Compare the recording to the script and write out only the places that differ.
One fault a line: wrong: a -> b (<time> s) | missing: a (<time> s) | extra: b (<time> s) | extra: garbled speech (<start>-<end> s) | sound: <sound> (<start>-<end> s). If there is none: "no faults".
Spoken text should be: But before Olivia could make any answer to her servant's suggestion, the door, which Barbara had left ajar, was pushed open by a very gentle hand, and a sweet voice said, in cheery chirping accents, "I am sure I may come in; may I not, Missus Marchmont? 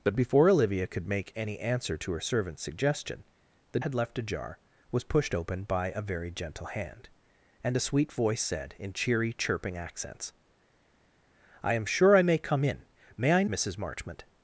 missing: door which Barbara (3.8 s)
missing: not (13.4 s)